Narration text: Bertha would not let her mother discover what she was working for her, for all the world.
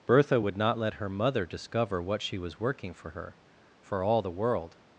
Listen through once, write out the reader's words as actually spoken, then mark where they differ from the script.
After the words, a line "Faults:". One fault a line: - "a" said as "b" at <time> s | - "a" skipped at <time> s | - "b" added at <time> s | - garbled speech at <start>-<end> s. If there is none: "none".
Bertha would not let her mother discover what she was working for her, for all the world.
Faults:
none